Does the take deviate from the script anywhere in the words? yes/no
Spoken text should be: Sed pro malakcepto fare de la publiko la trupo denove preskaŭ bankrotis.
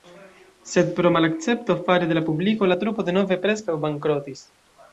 no